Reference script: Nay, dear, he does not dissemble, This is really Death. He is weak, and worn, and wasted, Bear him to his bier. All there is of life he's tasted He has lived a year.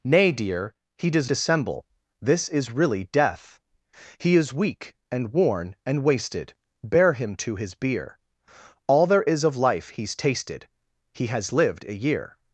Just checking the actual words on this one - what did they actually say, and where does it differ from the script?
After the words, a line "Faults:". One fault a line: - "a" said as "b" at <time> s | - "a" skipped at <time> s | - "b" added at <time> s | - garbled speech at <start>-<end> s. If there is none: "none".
Nay, dear, he does dissemble, This is really Death. He is weak, and worn, and wasted, Bear him to his bier. All there is of life he's tasted He has lived a year.
Faults:
- "not" skipped at 1.3 s